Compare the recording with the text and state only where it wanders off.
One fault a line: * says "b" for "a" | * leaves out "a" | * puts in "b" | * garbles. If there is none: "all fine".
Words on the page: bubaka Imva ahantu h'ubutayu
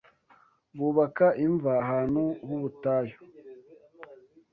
all fine